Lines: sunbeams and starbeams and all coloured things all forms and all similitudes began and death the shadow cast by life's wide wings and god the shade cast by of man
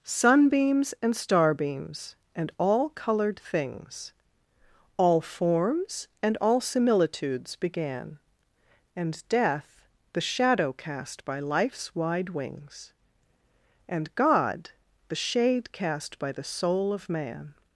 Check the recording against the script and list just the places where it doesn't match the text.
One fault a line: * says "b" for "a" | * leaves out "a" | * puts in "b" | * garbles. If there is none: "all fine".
* puts in "the soul"